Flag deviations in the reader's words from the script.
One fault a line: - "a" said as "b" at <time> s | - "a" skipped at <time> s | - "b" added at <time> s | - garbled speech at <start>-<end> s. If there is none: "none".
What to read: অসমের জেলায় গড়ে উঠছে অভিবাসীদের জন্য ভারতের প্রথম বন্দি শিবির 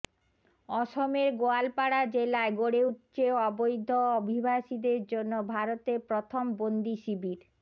- "গোয়ালপাড়া" added at 1.4 s
- "অবৈধ" added at 3.5 s